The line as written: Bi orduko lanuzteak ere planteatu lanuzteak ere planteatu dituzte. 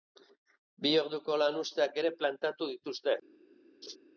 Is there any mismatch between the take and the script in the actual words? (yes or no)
yes